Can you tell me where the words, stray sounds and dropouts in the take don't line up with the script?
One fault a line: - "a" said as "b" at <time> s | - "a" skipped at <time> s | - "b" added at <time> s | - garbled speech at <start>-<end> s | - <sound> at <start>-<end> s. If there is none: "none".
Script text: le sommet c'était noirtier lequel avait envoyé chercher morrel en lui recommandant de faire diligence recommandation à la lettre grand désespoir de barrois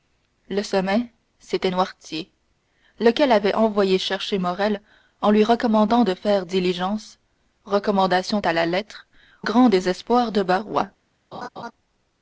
- laugh at 11.3-11.7 s